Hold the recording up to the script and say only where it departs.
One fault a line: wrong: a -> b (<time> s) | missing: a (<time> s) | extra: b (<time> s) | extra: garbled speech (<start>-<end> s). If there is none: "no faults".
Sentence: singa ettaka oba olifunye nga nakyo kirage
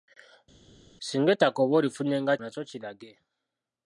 no faults